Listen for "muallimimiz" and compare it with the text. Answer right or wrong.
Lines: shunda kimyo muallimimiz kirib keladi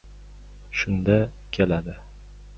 wrong